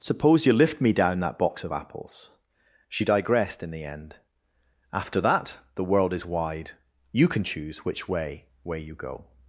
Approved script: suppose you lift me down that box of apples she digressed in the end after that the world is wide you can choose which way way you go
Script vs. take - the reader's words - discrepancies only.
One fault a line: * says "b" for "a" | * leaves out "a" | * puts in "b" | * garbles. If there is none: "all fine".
all fine